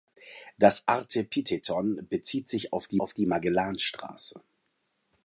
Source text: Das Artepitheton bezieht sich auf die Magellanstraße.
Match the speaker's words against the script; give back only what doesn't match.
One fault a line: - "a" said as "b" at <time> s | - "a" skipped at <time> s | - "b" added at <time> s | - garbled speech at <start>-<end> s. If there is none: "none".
- "auf die" added at 3.0 s